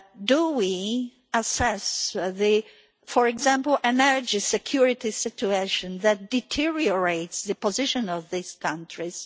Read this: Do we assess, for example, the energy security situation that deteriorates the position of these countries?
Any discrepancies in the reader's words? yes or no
no